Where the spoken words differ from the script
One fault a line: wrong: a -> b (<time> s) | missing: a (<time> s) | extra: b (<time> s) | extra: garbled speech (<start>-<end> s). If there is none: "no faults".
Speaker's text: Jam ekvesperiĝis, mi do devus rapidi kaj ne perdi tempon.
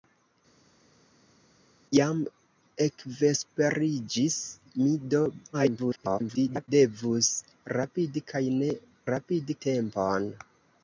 extra: garbled speech (5.5-6.7 s)
wrong: perdi -> rapidi (9.1 s)